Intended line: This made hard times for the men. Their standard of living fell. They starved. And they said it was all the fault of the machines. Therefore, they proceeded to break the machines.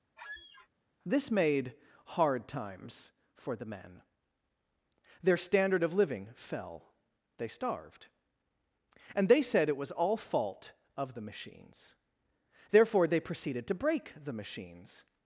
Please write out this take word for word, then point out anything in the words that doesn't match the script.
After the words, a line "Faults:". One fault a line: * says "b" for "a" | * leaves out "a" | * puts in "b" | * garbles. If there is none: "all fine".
This made hard times for the men. Their standard of living fell. They starved. And they said it was all fault of the machines. Therefore, they proceeded to break the machines.
Faults:
* leaves out "the"